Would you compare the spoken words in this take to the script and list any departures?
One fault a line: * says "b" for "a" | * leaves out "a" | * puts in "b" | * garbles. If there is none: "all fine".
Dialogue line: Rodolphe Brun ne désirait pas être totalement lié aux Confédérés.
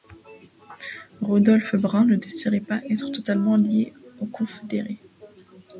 all fine